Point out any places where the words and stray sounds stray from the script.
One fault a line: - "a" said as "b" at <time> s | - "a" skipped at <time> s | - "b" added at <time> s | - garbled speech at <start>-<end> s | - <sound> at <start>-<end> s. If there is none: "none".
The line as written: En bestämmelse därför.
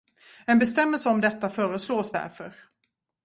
- "om detta föreslås" added at 1.1 s